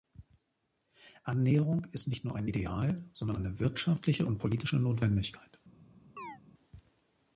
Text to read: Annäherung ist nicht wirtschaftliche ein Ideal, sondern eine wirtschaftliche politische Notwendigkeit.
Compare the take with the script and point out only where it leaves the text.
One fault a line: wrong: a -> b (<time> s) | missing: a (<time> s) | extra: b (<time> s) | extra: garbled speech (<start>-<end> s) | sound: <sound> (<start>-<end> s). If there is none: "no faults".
wrong: wirtschaftliche -> nur (2.2 s)
extra: und (4.3 s)
sound: chirp (6.2-6.4 s)